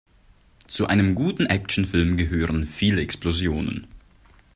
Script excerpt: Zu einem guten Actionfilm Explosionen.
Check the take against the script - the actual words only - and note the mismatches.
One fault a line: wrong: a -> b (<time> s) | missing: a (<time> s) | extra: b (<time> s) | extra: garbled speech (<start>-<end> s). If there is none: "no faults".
extra: gehören viele (2.2 s)